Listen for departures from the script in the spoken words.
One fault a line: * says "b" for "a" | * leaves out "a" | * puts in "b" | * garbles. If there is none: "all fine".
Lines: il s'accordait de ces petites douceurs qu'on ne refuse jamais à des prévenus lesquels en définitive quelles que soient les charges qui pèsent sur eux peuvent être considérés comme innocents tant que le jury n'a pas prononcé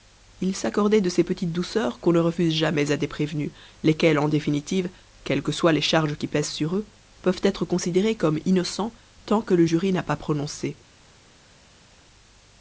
all fine